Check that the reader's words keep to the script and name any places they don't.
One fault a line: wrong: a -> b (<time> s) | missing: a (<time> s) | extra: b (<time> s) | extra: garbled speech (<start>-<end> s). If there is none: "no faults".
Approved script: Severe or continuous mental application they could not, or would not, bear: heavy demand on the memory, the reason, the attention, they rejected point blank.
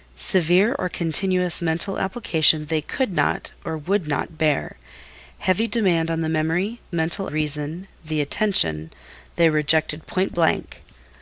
wrong: the -> mental (6.9 s)